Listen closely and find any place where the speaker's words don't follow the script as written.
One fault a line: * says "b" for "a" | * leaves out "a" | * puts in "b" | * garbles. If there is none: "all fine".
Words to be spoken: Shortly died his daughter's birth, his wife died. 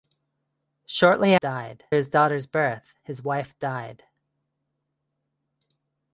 all fine